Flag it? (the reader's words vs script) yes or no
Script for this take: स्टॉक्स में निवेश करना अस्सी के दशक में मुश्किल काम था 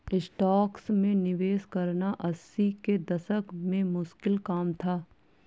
no